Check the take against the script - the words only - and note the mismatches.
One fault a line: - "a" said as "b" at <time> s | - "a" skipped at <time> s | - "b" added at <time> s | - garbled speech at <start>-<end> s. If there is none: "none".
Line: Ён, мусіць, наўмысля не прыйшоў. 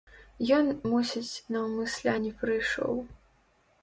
none